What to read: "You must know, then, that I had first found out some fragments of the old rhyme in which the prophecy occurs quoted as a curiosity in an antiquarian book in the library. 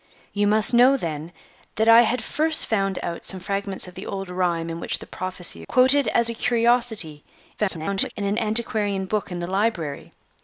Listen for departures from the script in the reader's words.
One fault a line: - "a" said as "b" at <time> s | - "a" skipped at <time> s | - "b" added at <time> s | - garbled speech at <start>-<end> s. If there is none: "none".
- "occurs" skipped at 5.6 s
- garbled speech at 7.6-8.1 s